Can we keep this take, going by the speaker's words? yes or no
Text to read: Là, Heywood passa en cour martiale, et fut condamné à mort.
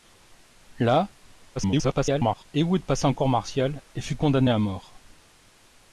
no